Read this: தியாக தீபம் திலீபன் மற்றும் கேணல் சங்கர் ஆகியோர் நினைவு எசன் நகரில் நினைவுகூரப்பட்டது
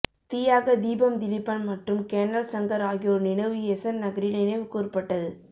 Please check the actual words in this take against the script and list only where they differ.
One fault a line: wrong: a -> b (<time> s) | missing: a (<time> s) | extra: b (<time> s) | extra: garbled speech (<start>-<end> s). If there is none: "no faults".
no faults